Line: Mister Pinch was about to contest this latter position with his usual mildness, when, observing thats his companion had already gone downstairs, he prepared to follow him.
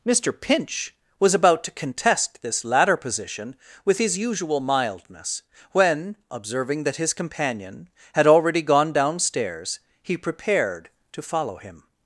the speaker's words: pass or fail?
fail